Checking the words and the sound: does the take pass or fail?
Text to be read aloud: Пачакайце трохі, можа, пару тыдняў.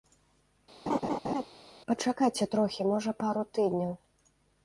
fail